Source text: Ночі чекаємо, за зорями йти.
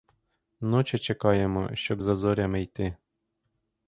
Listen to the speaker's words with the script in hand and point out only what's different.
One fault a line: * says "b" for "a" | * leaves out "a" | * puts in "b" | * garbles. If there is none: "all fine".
* puts in "щоб"